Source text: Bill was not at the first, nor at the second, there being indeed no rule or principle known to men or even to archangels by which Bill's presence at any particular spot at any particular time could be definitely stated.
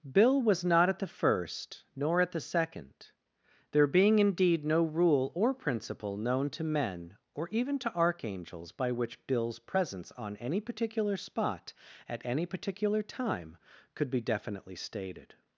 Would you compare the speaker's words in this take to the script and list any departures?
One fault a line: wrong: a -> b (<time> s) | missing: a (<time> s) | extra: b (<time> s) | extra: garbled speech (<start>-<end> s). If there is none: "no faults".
wrong: at -> on (10.1 s)